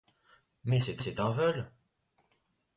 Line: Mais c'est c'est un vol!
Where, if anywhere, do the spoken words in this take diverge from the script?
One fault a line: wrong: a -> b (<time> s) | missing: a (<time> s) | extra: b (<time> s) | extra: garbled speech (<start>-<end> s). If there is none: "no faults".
no faults